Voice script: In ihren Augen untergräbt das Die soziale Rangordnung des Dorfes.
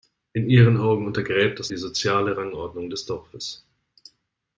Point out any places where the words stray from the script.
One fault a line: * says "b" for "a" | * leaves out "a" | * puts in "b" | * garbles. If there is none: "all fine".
all fine